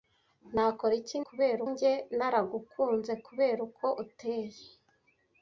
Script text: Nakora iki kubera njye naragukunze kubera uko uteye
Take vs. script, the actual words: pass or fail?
pass